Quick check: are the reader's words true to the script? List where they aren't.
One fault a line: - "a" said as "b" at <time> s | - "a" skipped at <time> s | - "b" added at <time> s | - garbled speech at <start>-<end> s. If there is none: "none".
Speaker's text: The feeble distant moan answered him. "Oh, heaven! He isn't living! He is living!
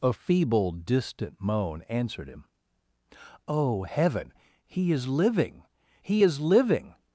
- "The" said as "A" at 0.0 s
- "isn't" said as "is" at 4.9 s